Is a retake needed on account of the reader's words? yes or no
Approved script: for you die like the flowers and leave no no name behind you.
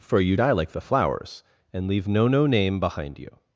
no